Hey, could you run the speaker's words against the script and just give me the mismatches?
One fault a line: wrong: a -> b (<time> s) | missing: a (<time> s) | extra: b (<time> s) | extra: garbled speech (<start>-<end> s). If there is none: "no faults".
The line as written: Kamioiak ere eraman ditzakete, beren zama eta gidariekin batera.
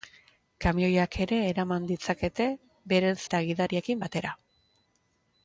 missing: zama (3.2 s)